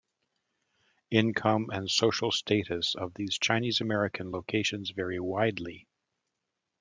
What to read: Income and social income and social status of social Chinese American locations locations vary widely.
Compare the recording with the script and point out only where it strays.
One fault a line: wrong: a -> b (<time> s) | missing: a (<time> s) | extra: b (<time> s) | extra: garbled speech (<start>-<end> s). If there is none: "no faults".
missing: income and social (2.3 s)
wrong: social -> these (3.1 s)
missing: locations (4.9 s)